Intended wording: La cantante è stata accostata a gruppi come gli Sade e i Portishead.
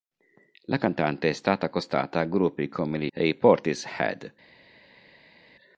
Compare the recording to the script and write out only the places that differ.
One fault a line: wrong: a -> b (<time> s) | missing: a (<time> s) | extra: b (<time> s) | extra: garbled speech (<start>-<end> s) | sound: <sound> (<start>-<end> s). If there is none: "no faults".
missing: Sade (3.1 s)